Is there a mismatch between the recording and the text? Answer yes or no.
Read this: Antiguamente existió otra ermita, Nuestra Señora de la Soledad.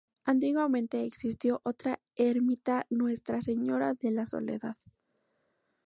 no